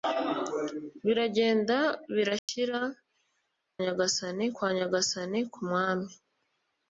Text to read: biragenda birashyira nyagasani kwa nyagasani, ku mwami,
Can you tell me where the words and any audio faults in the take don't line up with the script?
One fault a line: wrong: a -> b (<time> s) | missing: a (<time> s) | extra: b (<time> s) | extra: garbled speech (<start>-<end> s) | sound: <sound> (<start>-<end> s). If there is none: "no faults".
sound: dropout (2.4-2.5 s)